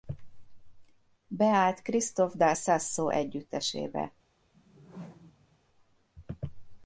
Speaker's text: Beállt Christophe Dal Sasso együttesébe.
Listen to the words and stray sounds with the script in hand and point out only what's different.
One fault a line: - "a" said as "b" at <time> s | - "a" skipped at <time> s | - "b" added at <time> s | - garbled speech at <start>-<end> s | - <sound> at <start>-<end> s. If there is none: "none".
- whoosh at 4.5-5.6 s